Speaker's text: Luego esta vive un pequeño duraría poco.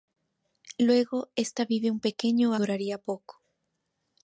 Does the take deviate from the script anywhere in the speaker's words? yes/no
no